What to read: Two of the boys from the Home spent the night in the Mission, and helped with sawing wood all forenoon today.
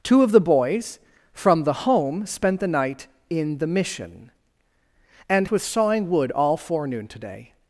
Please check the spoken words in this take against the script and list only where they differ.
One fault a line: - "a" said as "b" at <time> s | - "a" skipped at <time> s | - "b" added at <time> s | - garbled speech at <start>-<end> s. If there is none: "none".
- "helped" skipped at 5.5 s